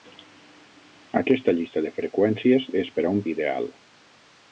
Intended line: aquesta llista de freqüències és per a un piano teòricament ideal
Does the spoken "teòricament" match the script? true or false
false